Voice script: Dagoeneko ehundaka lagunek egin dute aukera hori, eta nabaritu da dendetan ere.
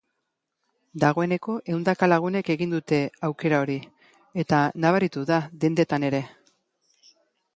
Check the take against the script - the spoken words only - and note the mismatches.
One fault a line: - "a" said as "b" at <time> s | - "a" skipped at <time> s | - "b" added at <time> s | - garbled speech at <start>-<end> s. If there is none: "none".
none